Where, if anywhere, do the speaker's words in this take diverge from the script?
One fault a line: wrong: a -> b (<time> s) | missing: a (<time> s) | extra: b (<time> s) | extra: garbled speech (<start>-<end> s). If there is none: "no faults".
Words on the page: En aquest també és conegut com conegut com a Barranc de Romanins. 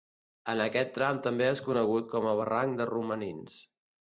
extra: tram (1.0 s)
missing: conegut com (2.3 s)